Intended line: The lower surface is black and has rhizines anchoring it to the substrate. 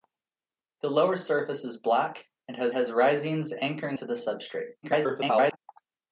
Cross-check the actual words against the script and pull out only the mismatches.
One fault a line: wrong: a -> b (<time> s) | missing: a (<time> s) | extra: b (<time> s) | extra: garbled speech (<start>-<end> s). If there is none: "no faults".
extra: has (2.7 s)
missing: it (4.0 s)
extra: garbled speech (4.8-5.6 s)